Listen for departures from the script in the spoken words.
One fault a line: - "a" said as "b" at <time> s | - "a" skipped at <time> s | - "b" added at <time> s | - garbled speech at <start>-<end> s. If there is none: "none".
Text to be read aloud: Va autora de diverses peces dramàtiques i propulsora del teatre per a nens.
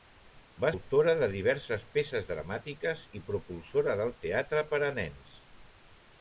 none